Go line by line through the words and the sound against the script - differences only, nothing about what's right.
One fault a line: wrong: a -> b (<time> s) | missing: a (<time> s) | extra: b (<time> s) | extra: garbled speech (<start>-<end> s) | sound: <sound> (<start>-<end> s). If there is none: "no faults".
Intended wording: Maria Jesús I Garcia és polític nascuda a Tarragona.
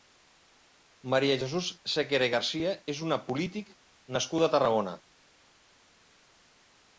extra: Sequera (1.9 s)
extra: una (3.1 s)